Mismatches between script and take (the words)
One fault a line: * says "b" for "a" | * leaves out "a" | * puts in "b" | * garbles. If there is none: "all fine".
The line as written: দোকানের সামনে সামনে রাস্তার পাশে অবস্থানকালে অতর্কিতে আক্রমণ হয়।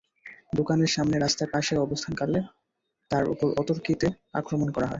* leaves out "সামনে"
* puts in "তাঁর ওপর"
* puts in "করা"